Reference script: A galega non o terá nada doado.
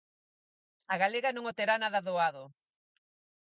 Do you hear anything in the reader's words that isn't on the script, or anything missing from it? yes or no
no